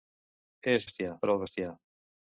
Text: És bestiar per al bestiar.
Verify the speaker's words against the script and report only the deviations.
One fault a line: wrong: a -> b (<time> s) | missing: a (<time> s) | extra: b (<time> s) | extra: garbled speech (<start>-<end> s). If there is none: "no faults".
no faults